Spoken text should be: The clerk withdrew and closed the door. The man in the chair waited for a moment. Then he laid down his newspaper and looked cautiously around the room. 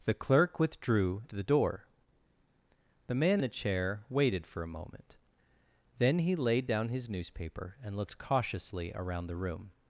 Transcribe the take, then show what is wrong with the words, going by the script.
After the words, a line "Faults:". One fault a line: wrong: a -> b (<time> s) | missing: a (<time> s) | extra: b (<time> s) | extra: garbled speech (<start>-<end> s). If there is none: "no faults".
The clerk withdrew the door. The man the chair waited for a moment. Then he laid down his newspaper and looked cautiously around the room.
Faults:
missing: and closed (1.2 s)
missing: in (3.4 s)